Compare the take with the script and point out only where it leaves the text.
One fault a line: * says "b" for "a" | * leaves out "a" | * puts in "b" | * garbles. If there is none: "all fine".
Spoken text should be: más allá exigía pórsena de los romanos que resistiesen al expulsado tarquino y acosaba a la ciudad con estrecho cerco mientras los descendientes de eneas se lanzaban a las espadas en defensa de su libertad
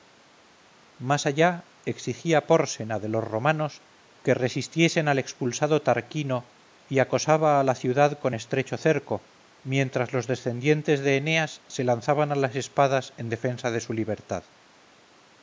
all fine